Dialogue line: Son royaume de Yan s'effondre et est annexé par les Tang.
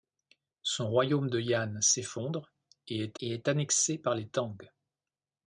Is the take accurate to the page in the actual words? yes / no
no